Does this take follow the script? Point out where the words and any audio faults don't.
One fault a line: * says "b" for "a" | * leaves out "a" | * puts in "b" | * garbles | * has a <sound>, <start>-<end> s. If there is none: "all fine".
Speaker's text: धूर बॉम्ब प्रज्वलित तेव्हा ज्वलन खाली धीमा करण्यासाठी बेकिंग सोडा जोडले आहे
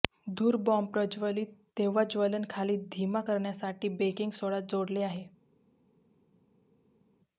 all fine